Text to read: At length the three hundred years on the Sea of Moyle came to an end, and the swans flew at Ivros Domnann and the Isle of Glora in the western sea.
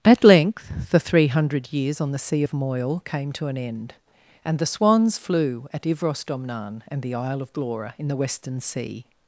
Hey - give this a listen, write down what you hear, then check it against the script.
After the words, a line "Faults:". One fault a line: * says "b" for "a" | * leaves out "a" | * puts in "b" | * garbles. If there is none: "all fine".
At length the three hundred years on the Sea of Moyle came to an end, and the swans flew at Ivros Domnann and the Isle of Glora in the western sea.
Faults:
all fine